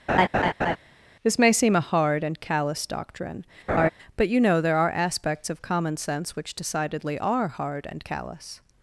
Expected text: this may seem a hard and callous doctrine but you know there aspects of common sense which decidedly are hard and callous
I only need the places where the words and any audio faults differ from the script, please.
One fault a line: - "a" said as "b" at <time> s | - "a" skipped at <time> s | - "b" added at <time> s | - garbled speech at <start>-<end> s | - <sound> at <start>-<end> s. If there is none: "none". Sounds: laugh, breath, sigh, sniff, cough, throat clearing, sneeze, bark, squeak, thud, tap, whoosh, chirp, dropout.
- laugh at 0.1-0.8 s
- laugh at 3.7-3.9 s
- "are" added at 4.8 s